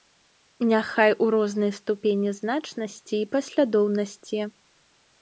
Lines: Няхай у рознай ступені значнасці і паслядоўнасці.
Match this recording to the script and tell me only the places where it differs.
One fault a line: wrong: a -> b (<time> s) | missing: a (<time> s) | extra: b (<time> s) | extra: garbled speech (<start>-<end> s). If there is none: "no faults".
no faults